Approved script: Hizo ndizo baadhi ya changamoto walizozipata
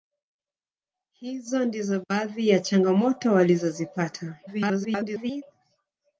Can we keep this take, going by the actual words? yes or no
no